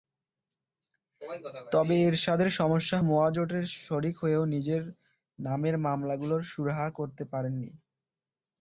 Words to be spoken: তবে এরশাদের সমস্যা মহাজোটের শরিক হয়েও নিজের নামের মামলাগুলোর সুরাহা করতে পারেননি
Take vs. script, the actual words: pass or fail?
pass